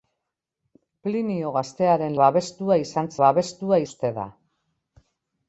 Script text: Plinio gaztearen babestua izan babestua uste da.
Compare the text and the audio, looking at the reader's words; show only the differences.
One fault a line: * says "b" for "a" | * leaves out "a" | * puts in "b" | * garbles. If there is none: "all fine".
all fine